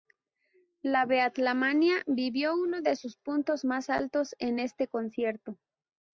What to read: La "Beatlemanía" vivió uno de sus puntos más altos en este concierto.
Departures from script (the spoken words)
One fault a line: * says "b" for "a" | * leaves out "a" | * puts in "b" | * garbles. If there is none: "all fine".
all fine